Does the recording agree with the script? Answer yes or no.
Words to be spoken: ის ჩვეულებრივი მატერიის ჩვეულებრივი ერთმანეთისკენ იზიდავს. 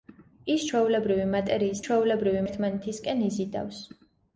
yes